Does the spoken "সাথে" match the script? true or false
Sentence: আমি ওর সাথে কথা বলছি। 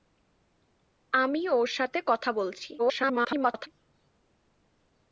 true